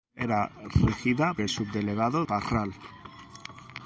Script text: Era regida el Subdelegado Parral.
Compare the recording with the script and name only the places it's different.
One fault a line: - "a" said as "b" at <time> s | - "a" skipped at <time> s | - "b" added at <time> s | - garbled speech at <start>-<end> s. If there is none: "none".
none